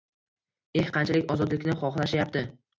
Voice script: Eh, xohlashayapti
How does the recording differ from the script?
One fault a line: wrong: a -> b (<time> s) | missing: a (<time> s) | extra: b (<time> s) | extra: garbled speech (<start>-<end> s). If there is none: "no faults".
extra: qanchalik ozodlikni (1.0 s)